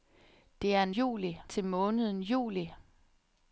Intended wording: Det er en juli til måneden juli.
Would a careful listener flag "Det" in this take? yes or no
no